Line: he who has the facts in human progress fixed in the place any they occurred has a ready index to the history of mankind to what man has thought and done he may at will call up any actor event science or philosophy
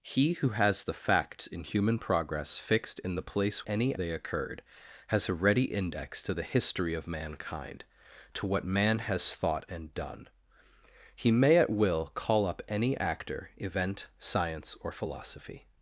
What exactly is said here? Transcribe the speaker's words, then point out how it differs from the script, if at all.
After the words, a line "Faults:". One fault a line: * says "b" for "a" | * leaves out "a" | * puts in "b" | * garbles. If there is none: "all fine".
he who has the facts in human progress fixed in the place any they occurred has a ready index to the history of mankind to what man has thought and done he may at will call up any actor event science or philosophy
Faults:
all fine